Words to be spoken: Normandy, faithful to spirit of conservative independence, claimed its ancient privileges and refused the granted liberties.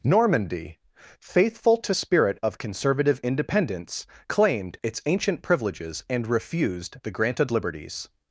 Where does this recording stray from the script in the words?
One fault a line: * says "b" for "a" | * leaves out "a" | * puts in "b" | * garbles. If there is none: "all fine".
all fine